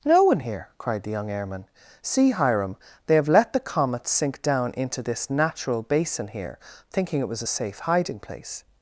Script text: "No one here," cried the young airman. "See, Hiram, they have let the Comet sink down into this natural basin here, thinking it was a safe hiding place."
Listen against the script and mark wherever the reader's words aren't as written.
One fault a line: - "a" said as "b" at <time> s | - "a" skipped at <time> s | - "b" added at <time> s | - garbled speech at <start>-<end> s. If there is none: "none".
none